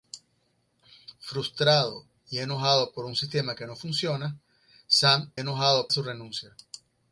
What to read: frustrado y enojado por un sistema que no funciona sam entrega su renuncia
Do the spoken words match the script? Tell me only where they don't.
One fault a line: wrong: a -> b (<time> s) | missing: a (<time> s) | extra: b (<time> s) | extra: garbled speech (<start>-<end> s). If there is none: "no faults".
wrong: entrega -> enojado (5.3 s)